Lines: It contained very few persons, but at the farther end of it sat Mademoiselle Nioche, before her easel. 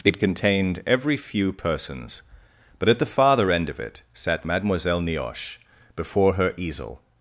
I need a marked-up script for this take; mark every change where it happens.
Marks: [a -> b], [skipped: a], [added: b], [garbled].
It contained [very -> every] few persons, but at the farther end of it sat Mademoiselle Nioche, before her easel.